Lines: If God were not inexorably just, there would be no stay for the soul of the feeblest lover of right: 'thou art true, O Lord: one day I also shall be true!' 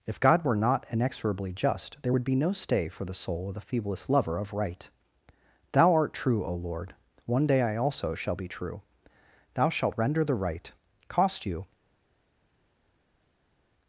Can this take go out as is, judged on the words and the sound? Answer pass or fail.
fail